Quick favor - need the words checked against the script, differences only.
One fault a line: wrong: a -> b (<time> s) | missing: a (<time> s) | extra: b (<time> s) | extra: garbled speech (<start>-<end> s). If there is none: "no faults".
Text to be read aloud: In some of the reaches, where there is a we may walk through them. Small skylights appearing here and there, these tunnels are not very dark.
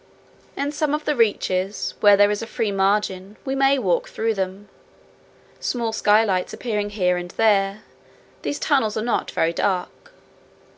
extra: free margin (2.5 s)